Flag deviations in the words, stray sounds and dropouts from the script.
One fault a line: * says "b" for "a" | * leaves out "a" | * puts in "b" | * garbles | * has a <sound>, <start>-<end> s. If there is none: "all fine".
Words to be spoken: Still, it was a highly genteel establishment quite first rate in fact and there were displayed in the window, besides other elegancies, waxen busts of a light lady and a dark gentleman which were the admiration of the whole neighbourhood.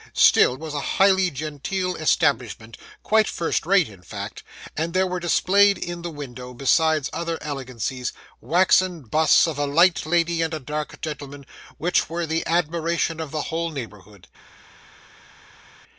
* leaves out "it"